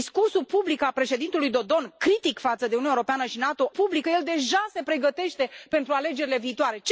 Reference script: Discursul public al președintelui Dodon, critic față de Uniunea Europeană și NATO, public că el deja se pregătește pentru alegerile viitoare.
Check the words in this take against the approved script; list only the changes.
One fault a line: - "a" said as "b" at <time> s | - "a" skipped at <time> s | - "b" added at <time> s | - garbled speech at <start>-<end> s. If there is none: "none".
none